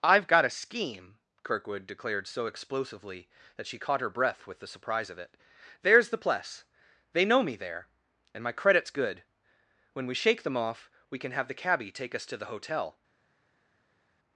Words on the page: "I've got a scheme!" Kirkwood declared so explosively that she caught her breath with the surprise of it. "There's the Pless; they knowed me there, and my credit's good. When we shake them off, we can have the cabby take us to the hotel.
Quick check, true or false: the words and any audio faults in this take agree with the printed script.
false